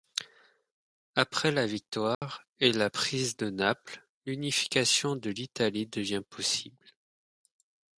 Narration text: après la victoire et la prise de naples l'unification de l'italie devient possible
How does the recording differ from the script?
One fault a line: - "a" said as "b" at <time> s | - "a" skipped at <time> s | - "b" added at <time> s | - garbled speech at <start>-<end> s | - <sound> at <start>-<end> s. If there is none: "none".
- dropout at 2.1-2.2 s